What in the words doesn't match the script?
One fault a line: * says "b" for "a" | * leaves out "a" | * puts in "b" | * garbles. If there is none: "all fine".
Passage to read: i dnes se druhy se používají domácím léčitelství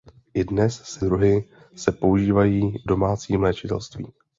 all fine